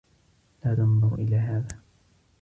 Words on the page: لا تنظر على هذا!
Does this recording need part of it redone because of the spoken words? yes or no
yes